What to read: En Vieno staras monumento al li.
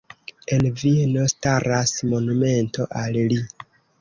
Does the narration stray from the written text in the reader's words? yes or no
no